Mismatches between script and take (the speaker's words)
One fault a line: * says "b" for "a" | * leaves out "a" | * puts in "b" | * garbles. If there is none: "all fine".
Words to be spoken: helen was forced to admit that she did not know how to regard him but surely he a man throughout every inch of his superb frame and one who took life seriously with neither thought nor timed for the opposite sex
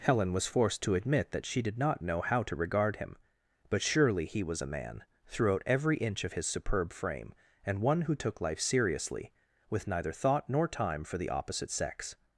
* puts in "was"
* says "time" for "timed"